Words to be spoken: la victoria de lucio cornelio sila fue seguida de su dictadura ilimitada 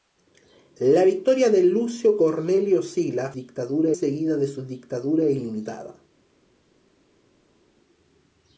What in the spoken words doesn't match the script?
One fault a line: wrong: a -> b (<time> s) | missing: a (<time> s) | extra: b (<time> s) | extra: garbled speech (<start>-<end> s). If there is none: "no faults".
wrong: fue -> dictadura (3.3 s)